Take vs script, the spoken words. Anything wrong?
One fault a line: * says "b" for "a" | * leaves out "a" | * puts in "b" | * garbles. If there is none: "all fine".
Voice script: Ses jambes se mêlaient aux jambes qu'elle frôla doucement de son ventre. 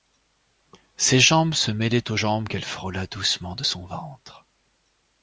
all fine